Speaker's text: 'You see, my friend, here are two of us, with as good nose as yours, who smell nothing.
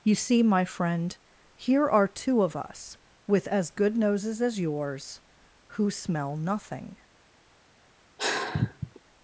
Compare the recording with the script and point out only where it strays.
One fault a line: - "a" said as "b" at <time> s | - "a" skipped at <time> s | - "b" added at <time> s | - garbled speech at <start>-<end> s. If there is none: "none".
- "nose" said as "noses" at 4.0 s